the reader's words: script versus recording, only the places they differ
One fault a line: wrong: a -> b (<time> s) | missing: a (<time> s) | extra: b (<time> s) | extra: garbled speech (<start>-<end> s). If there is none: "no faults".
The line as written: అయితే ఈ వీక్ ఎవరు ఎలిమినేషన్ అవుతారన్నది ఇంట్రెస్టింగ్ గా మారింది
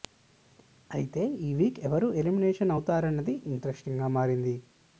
no faults